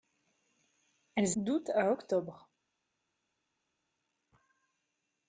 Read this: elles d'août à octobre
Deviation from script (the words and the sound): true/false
false